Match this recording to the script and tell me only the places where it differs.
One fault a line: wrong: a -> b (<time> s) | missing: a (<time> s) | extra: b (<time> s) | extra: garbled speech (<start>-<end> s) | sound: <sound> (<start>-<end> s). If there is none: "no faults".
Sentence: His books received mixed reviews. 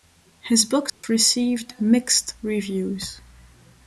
sound: dropout (0.9-1.0 s)